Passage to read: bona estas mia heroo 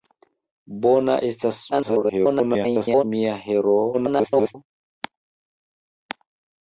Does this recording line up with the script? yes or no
no